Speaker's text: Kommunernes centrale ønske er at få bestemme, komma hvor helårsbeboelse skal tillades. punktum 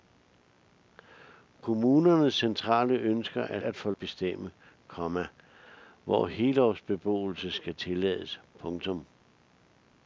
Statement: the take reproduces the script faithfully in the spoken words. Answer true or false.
true